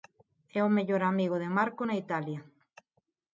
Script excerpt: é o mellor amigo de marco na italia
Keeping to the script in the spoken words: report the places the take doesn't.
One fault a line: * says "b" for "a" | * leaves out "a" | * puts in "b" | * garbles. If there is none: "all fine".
all fine